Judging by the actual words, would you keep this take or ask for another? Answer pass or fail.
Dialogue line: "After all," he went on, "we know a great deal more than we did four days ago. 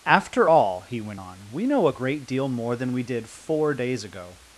pass